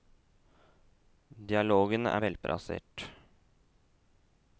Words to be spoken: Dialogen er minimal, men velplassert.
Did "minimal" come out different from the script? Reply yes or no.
yes